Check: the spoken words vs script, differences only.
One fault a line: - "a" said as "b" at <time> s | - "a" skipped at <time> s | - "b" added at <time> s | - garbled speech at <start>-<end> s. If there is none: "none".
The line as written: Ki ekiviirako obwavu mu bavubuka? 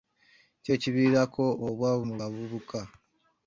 none